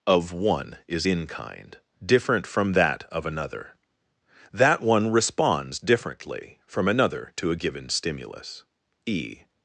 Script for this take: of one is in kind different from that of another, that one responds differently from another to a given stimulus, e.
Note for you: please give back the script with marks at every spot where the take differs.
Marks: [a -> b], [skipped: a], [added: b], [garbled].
of one is in kind different from that of another, that one responds differently from another to a given stimulus, e.